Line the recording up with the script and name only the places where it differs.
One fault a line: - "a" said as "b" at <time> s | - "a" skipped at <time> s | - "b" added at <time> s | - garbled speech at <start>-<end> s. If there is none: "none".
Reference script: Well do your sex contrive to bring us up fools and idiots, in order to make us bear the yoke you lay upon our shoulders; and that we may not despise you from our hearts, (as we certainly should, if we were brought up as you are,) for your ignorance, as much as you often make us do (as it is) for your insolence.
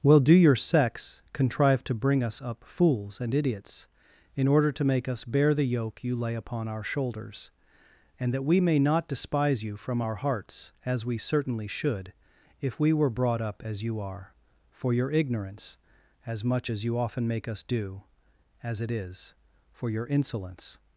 none